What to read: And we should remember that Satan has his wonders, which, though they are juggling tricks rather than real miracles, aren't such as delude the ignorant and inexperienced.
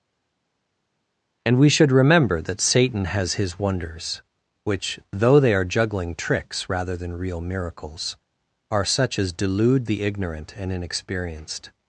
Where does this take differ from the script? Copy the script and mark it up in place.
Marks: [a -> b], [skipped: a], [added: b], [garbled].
And we should remember that Satan has his wonders, which, though they are juggling tricks rather than real miracles, [aren't -> are] such as delude the ignorant and inexperienced.